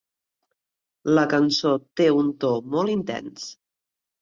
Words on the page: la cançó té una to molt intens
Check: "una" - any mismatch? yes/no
yes